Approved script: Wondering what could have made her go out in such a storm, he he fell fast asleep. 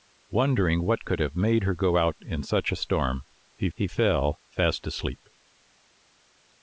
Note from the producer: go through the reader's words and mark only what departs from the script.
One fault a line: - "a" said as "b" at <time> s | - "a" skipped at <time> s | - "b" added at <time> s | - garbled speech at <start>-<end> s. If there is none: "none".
none